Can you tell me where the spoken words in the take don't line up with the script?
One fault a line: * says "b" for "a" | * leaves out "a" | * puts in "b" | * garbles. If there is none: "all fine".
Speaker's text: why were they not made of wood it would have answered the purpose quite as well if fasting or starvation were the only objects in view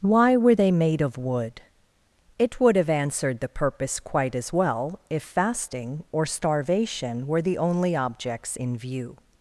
* leaves out "not"